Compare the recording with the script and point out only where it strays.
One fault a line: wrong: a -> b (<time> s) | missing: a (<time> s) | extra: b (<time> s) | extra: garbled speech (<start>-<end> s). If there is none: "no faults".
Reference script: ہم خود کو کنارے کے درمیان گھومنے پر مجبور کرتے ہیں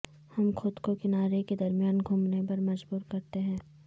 no faults